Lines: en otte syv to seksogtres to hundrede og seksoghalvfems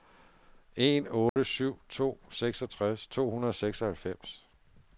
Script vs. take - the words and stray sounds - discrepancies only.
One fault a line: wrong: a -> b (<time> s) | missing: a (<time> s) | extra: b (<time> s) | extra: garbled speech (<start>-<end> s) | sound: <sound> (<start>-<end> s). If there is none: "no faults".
sound: dropout (1.3-1.4 s)